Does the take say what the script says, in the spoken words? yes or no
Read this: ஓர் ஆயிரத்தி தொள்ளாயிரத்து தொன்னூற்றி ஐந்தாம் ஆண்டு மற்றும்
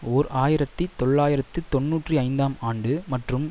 yes